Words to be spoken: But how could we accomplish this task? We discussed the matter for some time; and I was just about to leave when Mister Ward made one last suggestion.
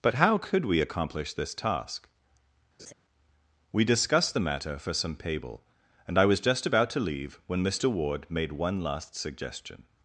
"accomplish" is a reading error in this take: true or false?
false